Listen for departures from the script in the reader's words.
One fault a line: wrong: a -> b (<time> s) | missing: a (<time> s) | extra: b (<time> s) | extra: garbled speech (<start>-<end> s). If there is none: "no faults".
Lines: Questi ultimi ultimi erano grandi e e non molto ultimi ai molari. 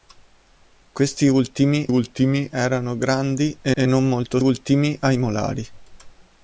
no faults